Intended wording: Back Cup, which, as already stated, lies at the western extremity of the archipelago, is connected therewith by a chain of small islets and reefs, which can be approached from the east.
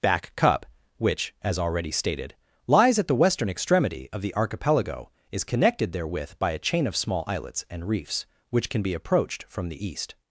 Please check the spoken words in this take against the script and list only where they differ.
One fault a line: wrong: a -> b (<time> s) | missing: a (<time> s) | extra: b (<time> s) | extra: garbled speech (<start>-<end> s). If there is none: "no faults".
no faults